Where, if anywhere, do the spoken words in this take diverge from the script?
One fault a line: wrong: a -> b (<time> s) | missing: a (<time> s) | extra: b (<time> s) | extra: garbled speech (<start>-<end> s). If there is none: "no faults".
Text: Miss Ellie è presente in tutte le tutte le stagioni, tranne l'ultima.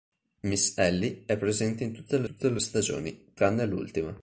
no faults